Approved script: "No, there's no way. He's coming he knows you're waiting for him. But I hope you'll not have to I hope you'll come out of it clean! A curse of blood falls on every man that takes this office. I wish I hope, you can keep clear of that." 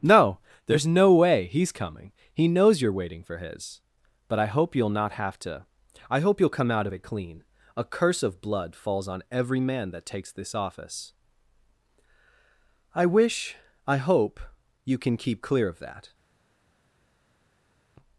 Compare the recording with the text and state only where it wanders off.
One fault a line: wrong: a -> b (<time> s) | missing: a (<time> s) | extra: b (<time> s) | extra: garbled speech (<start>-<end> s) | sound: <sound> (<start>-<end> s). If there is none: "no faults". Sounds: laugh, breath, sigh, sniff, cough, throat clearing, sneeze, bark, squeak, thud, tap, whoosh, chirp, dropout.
wrong: him -> his (3.4 s)